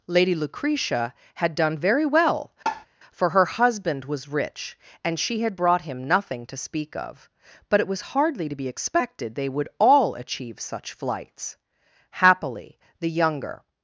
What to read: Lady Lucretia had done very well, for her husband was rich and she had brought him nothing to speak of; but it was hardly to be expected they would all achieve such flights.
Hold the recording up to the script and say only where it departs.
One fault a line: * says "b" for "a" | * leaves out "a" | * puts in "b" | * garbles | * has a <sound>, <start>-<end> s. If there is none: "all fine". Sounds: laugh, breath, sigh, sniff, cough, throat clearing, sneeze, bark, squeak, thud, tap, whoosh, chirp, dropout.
* has a tap, 2.7-2.9 s
* puts in "Happily the younger"